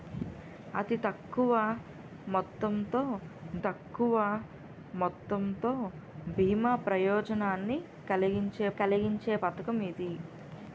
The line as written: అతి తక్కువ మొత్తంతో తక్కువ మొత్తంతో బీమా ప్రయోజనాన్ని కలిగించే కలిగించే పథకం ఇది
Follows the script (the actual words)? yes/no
yes